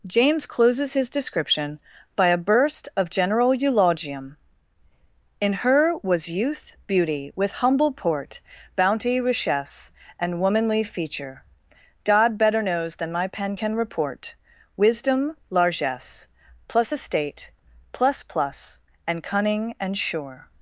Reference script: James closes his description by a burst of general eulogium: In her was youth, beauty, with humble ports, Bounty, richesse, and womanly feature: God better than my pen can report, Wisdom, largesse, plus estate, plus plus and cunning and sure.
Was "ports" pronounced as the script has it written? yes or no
no